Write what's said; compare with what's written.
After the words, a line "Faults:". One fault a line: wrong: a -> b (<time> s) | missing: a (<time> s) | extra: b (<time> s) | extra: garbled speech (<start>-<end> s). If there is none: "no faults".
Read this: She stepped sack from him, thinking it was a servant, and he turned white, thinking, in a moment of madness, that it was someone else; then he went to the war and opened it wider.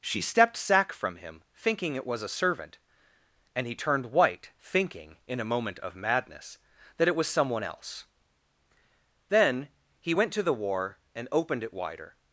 She stepped sack from him, thinking it was a servant, and he turned white, thinking, in a moment of madness, that it was someone else; then he went to the war and opened it wider.
Faults:
no faults